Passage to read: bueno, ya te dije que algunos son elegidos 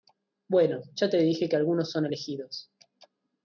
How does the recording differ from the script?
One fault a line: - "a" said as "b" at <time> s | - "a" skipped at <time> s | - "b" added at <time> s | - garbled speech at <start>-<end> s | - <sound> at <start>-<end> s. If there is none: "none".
none